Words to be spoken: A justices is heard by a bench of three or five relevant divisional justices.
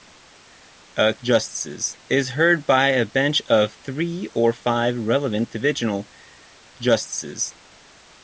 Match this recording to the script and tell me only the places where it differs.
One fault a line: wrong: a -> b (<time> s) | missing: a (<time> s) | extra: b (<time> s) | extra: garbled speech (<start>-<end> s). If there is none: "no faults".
no faults